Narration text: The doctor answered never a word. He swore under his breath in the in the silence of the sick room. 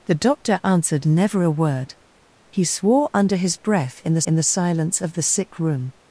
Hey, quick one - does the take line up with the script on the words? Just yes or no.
yes